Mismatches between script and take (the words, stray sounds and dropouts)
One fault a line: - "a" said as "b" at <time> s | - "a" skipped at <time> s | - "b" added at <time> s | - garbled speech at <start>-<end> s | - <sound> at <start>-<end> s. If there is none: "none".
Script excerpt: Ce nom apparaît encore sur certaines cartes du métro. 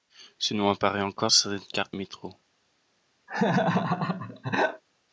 - "sur" skipped at 1.3 s
- "du" skipped at 1.9 s
- laugh at 3.3-4.8 s